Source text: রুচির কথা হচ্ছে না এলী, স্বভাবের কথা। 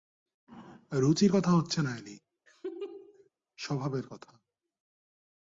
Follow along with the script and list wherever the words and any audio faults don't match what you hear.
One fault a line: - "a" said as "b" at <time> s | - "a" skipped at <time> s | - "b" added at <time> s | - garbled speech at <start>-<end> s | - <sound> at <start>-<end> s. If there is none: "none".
- laugh at 2.5-3.3 s